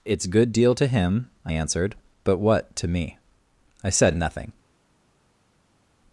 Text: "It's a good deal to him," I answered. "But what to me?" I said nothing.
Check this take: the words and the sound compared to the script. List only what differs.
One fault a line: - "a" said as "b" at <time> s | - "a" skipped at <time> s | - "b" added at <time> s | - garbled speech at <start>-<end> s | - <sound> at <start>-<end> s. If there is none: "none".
- "a" skipped at 0.2 s